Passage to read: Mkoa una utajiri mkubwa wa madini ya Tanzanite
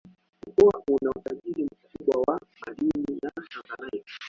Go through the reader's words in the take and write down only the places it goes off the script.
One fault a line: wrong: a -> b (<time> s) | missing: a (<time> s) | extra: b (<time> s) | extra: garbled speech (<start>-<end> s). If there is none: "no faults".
no faults